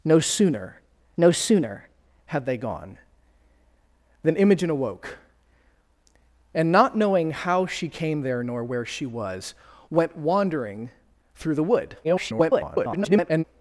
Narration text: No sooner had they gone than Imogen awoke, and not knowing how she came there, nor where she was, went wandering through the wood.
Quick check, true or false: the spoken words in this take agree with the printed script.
false